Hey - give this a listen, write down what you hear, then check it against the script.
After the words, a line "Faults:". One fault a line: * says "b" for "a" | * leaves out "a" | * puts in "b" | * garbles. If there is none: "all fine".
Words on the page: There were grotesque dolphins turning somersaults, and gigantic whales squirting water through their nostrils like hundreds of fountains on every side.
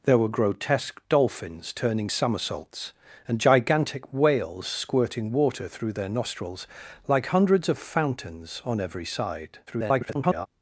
There were grotesque dolphins turning somersaults, and gigantic whales squirting water through their nostrils like hundreds of fountains on every side. [garbled]
Faults:
* garbles